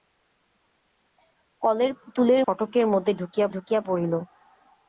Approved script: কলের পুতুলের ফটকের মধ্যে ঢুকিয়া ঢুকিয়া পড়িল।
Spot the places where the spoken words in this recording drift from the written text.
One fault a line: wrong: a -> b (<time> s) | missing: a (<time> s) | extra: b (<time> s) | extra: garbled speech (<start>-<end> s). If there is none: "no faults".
no faults